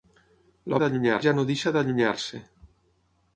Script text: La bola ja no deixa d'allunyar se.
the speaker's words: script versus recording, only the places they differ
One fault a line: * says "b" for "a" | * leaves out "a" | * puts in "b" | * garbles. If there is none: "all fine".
* says "d'allunyar" for "bola"